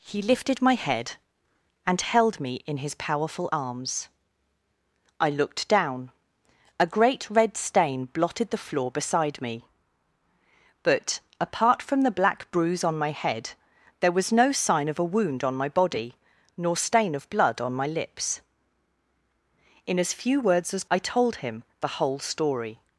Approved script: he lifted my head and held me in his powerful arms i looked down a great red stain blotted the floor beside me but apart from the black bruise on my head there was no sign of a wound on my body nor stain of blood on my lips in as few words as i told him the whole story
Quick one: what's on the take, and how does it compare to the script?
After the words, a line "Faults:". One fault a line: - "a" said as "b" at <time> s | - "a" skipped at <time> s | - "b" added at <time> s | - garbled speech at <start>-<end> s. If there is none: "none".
he lifted my head and held me in his powerful arms i looked down a great red stain blotted the floor beside me but apart from the black bruise on my head there was no sign of a wound on my body nor stain of blood on my lips in as few words as i told him the whole story
Faults:
none